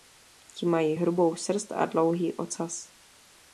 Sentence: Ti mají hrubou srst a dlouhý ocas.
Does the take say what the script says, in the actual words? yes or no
yes